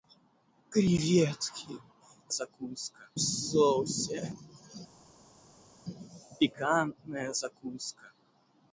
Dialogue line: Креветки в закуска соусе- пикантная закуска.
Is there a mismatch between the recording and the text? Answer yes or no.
no